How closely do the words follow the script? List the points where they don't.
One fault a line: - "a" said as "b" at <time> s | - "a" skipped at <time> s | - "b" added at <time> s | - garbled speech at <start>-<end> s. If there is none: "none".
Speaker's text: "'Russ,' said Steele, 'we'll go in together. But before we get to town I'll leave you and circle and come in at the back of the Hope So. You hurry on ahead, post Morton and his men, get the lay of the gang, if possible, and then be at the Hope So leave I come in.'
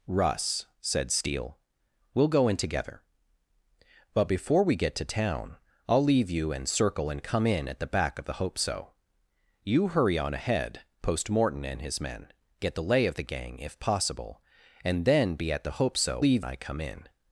none